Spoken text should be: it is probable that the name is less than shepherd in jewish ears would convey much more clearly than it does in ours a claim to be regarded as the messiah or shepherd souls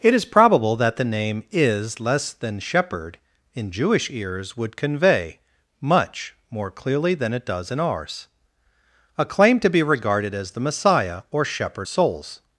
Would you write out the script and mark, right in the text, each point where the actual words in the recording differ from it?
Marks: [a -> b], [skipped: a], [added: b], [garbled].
it is probable that the name is less than shepherd in jewish ears would convey much more clearly than it does in ours a claim to be regarded as the messiah or shepherd souls